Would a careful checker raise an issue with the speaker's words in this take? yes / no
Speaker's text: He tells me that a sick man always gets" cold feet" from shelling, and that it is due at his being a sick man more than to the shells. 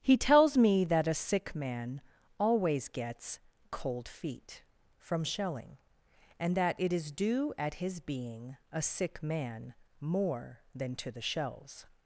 no